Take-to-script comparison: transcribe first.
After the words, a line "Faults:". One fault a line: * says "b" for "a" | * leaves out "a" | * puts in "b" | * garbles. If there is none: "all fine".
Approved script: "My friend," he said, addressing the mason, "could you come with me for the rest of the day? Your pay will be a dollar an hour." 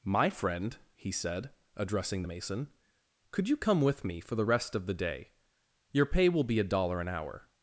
"My friend," he said, addressing the mason, "could you come with me for the rest of the day? Your pay will be a dollar an hour."
Faults:
all fine